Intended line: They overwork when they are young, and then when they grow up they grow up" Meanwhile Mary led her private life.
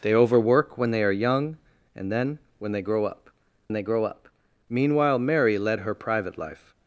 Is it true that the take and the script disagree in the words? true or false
false